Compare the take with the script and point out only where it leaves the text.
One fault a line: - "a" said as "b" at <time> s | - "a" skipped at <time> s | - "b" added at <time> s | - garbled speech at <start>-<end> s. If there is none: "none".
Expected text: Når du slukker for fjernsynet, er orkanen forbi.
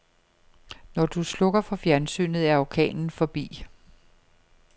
none